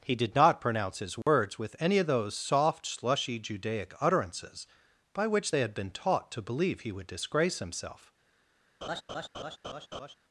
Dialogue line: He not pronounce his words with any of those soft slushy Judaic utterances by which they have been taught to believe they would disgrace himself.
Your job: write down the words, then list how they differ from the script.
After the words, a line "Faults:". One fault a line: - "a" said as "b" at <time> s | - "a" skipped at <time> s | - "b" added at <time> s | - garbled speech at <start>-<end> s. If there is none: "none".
He did not pronounce his words with any of those soft slushy Judaic utterances by which they had been taught to believe he would disgrace himself.
Faults:
- "did" added at 0.1 s
- "have" said as "had" at 5.6 s
- "they" said as "he" at 6.8 s